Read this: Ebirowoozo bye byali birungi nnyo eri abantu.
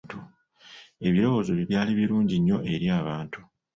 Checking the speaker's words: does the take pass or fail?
pass